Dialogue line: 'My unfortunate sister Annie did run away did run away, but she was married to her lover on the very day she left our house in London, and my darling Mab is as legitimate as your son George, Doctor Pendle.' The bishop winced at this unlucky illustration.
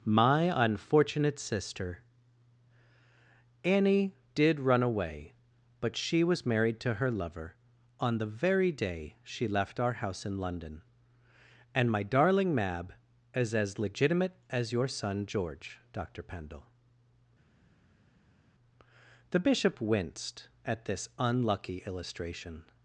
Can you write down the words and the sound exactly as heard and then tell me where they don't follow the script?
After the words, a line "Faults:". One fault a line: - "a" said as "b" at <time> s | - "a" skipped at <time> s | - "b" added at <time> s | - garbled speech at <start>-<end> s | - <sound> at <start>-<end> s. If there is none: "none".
'My unfortunate sister Annie did run away, but she was married to her lover on the very day she left our house in London, and my darling Mab is as legitimate as your son George, Doctor Pendle.' The bishop winced at this unlucky illustration.
Faults:
- "did run away" skipped at 5.3 s